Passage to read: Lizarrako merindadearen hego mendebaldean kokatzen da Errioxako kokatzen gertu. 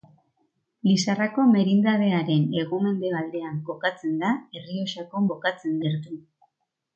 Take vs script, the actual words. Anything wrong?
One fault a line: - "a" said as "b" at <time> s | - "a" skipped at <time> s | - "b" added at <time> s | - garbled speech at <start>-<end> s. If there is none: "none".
none